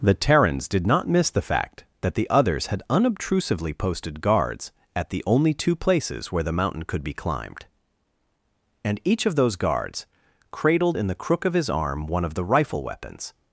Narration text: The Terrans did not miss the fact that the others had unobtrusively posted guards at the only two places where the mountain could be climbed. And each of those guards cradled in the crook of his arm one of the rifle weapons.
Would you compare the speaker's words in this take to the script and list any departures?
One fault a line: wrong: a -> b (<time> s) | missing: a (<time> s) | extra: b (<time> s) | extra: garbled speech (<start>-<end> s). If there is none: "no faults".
no faults